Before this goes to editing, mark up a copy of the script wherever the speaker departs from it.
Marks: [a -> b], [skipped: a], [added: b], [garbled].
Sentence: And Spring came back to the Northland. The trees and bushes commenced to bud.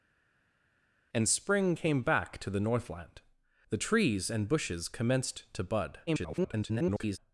And Spring came back to the Northland. The trees and bushes commenced to bud. [garbled]